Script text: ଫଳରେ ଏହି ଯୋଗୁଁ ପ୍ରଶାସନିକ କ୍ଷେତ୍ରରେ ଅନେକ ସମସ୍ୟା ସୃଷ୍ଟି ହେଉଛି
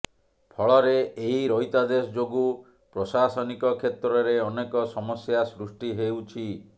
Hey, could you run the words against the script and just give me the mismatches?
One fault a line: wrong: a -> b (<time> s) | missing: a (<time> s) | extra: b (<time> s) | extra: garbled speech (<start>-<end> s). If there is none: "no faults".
extra: ରହିତାଦେଶ (1.5 s)